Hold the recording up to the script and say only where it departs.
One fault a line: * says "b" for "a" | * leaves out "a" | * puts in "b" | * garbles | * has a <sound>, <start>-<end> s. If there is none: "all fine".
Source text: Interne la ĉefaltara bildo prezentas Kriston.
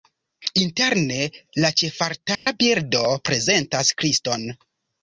* has a dropout, 2.3-2.5 s